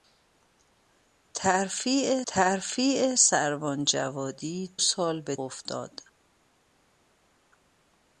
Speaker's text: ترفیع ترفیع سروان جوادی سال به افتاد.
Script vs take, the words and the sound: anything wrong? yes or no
no